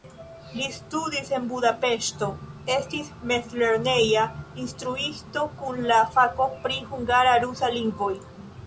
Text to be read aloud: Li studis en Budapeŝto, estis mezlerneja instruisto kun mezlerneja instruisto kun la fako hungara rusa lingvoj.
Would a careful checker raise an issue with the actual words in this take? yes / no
yes